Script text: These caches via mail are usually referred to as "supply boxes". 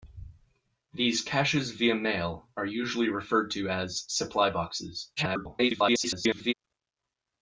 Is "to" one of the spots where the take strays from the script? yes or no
no